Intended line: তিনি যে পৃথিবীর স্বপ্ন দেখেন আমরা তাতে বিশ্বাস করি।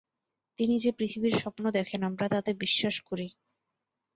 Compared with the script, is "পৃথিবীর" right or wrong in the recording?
right